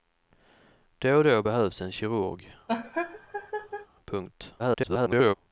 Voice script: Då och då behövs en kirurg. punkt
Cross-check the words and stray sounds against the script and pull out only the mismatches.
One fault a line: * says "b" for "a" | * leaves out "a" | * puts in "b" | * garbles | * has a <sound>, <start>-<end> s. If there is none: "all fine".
* has a laugh, 2.7-3.9 s
* garbles